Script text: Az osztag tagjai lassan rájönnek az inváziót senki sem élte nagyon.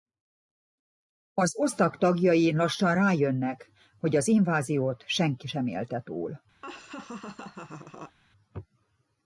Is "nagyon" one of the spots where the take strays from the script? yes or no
yes